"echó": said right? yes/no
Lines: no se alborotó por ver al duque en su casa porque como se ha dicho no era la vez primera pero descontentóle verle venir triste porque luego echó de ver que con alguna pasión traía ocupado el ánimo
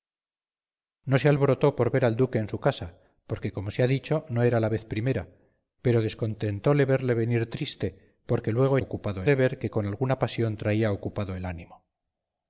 no